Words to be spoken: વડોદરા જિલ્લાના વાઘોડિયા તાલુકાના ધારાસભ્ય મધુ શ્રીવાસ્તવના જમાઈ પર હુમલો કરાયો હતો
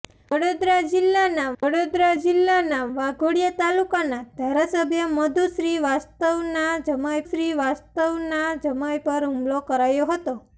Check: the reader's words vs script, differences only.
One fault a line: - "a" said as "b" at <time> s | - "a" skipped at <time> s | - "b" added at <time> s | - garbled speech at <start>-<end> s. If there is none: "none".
- "વડોદરા જિલ્લાના" added at 1.6 s
- "શ્રીવાસ્તવના જમાઈ" added at 7.2 s